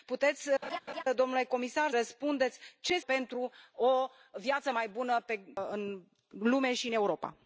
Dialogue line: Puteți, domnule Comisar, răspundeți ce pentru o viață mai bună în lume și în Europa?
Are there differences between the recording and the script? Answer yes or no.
no